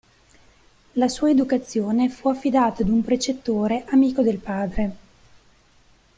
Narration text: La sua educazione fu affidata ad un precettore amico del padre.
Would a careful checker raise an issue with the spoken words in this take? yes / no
no